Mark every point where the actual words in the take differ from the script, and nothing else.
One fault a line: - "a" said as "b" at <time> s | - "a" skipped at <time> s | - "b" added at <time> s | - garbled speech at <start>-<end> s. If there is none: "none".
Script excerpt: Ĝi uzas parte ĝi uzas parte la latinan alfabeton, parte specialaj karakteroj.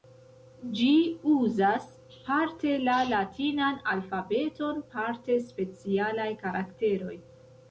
- "ĝi uzas parte" skipped at 2.7 s